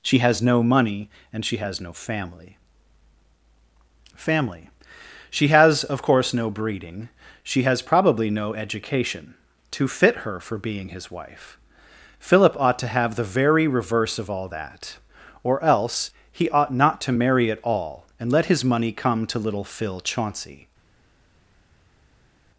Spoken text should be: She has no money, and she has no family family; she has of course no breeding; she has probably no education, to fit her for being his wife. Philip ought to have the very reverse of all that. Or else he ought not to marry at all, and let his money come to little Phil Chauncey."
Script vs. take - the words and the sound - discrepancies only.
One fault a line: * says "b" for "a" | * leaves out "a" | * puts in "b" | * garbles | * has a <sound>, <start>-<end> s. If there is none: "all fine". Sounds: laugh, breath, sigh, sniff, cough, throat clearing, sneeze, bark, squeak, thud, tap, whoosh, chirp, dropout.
all fine